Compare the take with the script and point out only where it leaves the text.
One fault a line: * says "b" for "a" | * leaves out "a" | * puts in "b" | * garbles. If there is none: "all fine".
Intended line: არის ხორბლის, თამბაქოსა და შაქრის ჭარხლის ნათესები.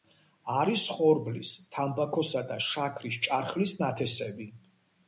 all fine